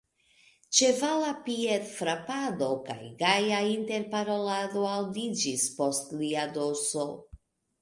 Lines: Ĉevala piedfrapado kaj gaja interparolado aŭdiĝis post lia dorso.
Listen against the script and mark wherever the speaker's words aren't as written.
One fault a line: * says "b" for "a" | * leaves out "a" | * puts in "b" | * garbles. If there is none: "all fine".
all fine